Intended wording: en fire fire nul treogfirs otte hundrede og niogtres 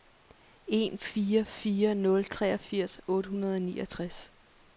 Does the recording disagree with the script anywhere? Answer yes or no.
no